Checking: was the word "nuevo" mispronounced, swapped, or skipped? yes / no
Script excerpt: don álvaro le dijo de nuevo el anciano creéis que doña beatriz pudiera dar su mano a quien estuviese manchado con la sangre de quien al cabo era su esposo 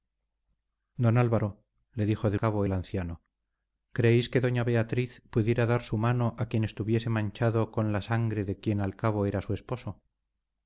yes